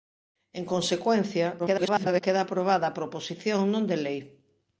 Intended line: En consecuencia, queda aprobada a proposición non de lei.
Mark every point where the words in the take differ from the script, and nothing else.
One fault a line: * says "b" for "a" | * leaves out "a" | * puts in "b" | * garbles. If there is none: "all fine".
* garbles